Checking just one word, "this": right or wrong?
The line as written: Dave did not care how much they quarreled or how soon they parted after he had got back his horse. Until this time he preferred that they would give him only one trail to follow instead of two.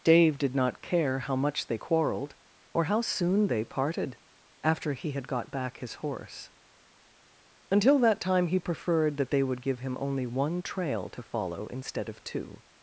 wrong